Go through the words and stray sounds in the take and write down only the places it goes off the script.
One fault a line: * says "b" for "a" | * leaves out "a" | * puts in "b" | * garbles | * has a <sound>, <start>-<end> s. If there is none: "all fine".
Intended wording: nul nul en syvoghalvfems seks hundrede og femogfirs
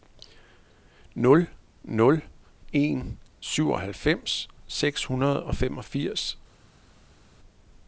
all fine